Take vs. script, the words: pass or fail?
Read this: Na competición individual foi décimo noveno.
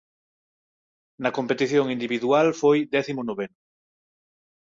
pass